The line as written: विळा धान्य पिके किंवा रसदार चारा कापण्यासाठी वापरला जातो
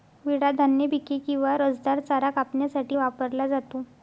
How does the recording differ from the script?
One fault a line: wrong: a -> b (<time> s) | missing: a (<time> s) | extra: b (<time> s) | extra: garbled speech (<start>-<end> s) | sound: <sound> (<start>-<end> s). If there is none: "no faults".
no faults